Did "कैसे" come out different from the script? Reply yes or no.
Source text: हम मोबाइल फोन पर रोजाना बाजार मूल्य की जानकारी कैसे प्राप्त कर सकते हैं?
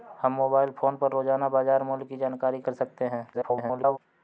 yes